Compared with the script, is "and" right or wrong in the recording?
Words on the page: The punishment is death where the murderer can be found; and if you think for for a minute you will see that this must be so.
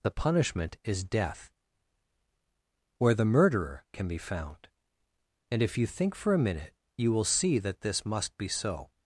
right